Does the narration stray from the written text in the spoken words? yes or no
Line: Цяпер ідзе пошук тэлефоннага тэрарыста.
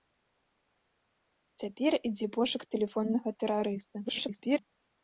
yes